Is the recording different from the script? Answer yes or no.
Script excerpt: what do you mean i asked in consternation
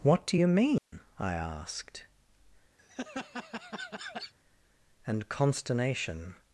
yes